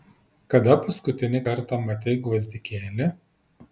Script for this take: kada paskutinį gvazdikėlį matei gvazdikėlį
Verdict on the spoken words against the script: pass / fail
fail